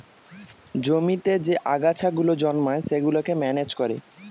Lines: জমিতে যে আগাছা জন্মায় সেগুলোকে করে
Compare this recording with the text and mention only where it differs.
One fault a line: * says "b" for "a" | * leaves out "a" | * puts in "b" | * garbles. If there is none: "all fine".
* puts in "গুলো"
* puts in "ম্যানেজ"